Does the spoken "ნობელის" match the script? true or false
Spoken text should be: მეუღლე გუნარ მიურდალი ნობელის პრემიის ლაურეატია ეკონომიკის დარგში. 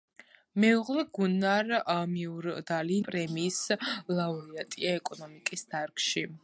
false